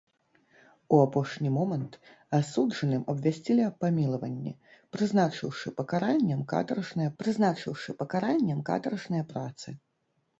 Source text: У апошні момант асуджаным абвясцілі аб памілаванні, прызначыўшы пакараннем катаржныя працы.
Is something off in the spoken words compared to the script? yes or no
yes